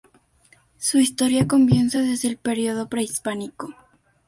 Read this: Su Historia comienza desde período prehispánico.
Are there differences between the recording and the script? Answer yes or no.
yes